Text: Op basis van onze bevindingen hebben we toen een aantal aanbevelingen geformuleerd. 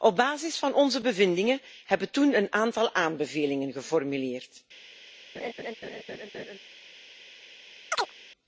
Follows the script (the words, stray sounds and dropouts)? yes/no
no